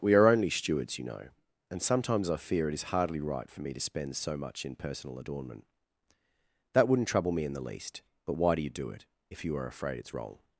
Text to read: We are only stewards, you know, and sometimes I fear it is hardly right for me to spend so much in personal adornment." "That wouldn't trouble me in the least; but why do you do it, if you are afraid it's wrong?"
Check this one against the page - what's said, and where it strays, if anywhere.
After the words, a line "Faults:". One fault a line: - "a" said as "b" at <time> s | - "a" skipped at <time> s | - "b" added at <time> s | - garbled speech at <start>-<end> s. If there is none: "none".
We are only stewards, you know, and sometimes I fear it is hardly right for me to spend so much in personal adornment." "That wouldn't trouble me in the least; but why do you do it, if you are afraid it's wrong?"
Faults:
none